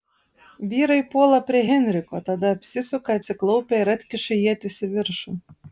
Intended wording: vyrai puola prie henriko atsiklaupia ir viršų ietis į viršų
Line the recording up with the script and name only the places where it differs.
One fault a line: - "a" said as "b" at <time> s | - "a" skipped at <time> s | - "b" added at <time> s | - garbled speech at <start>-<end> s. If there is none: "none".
- "tada apsisuka" added at 2.3 s
- "viršų" said as "atkiša" at 4.0 s